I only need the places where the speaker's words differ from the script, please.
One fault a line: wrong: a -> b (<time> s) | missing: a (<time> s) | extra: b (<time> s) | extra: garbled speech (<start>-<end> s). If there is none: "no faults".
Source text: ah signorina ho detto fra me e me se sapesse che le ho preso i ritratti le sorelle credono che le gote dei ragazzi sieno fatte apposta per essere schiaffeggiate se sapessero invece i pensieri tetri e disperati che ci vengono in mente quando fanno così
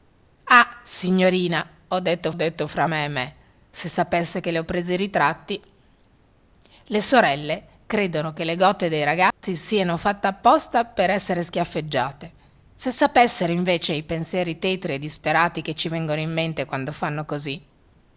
extra: detto (2.3 s)